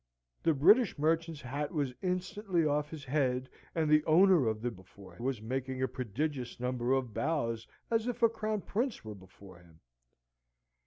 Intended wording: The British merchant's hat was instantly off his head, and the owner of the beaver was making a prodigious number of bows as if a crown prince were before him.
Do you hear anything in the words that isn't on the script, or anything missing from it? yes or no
yes